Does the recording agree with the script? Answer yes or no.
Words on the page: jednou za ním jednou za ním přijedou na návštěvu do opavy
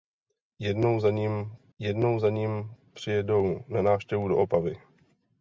yes